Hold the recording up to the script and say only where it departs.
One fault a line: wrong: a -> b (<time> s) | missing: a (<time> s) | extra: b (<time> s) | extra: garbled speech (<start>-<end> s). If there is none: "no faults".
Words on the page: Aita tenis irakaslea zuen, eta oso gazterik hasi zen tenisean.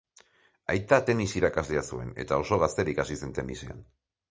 no faults